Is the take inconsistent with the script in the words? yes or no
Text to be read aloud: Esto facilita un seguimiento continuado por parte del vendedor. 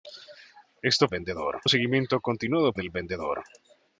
yes